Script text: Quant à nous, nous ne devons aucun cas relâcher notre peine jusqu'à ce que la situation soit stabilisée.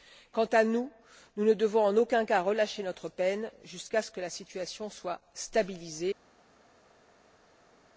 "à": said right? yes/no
yes